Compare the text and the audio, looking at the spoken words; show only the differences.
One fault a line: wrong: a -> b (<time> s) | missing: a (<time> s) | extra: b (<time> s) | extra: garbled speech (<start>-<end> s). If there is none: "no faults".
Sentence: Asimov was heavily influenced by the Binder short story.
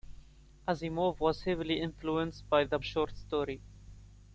missing: Binder (2.8 s)